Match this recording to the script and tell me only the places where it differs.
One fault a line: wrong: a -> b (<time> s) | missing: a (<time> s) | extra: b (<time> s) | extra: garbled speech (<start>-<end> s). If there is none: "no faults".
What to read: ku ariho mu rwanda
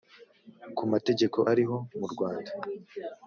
extra: mategeko (0.9 s)